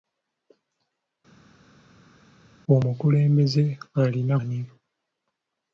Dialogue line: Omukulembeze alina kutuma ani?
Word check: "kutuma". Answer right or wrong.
wrong